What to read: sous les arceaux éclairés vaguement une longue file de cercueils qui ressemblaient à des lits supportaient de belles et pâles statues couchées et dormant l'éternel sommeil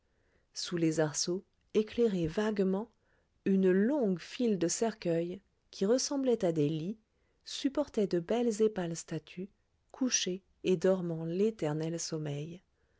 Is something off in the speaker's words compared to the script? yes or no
no